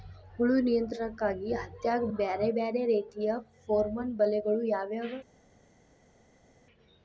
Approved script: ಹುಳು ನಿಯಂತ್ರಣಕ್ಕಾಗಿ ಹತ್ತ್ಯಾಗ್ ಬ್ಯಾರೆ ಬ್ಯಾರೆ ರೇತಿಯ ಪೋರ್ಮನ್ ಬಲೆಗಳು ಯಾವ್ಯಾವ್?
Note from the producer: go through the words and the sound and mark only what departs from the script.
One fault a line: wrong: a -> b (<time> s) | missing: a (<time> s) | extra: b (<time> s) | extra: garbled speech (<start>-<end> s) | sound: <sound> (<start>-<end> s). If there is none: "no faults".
no faults